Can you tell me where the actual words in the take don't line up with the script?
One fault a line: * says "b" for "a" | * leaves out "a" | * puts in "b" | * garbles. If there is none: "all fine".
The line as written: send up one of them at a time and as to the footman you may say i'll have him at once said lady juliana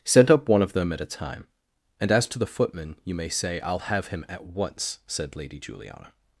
all fine